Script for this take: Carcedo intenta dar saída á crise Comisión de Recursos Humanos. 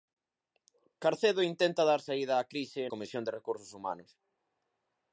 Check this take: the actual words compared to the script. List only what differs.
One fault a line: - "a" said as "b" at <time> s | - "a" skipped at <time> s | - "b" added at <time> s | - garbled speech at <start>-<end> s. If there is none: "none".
none